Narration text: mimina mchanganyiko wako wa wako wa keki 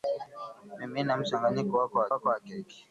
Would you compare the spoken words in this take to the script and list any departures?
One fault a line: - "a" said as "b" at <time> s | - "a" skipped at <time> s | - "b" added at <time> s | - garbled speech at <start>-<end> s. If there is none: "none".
none